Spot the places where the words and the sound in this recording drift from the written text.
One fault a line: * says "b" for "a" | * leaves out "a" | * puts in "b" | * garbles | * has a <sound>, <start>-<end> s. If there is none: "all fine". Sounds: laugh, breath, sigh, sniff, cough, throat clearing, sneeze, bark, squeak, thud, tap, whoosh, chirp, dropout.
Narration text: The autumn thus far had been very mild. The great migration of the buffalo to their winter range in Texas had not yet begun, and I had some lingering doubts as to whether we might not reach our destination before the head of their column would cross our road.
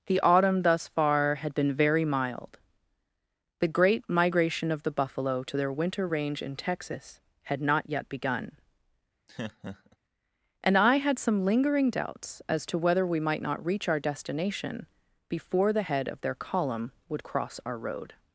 * has a laugh, 9.3-10.0 s